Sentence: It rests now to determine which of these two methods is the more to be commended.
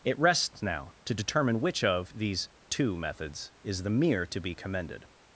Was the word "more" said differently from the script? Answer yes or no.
yes